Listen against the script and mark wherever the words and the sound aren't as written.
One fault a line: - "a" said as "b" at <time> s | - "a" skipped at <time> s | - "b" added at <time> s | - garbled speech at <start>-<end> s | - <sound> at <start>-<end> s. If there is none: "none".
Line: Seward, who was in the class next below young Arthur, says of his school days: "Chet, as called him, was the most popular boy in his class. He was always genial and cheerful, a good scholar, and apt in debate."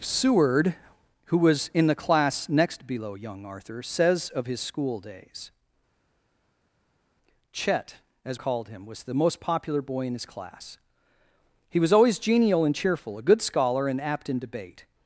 none